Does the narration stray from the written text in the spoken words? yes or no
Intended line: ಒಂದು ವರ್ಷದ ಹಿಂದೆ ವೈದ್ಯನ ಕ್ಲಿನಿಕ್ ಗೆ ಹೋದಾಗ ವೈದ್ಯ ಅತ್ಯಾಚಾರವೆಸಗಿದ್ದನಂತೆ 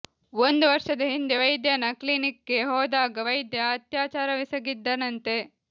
no